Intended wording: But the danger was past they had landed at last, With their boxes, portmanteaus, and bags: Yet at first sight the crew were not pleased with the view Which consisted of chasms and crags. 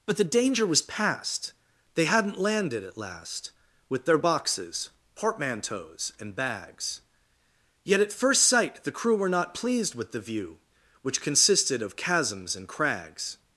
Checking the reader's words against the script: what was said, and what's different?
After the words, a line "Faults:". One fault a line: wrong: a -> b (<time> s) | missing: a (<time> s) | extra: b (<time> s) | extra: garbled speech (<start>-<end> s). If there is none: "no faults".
But the danger was past they hadn't landed at last, With their boxes, portmanteaus, and bags: Yet at first sight the crew were not pleased with the view Which consisted of chasms and crags.
Faults:
wrong: had -> hadn't (2.0 s)